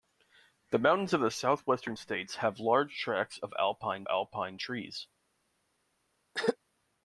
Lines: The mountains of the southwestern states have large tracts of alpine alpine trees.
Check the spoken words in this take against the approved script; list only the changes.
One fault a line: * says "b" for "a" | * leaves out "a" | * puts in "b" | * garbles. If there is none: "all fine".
all fine